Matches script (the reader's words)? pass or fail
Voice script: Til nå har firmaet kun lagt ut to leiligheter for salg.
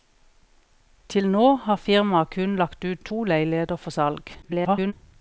fail